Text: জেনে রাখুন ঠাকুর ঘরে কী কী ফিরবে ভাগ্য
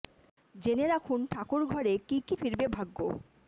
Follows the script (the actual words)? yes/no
yes